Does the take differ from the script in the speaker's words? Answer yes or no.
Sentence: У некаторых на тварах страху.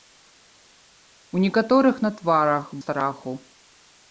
no